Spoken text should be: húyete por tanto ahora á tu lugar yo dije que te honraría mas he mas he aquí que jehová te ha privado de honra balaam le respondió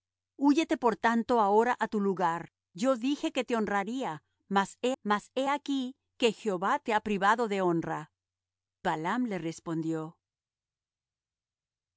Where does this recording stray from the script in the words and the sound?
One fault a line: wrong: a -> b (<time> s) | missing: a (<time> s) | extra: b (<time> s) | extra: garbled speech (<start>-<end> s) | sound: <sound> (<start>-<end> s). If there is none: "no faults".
no faults